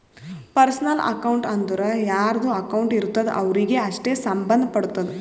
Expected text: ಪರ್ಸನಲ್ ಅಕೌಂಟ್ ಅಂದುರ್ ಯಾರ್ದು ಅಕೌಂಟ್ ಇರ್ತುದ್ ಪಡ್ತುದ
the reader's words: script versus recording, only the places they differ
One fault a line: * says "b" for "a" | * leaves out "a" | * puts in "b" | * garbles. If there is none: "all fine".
* puts in "ಅವ್ರಿಗೆ ಅಷ್ಟೇ ಸಂಭಂದ್"